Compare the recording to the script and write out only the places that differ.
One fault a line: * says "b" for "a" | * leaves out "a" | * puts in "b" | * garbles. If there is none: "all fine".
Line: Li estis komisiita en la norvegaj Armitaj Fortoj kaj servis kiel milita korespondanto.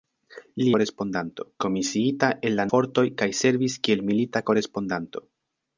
* says "korespondanto" for "estis"
* leaves out "norvegaj Armitaj"